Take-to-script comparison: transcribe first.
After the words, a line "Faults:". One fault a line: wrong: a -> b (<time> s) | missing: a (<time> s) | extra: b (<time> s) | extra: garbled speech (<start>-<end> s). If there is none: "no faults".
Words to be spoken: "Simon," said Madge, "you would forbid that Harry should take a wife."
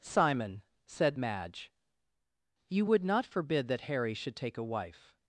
"Simon," said Madge, "you would not forbid that Harry should take a wife."
Faults:
extra: not (3.0 s)